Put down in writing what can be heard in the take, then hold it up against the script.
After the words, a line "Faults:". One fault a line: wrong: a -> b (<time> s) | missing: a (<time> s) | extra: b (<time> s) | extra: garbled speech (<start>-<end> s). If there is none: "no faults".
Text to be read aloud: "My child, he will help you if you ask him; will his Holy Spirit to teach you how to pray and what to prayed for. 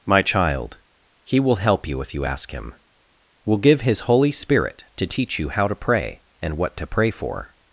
"My child, he will help you if you ask him; will give his Holy Spirit to teach you how to pray and what to pray for.
Faults:
extra: give (3.6 s)
wrong: prayed -> pray (6.9 s)